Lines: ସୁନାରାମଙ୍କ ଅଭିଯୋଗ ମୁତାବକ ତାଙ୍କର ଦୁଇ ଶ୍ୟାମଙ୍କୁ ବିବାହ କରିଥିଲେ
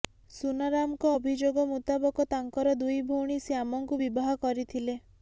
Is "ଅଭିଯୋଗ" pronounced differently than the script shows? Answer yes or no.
no